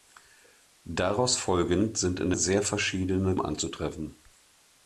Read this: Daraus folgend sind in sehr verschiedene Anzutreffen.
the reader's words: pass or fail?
pass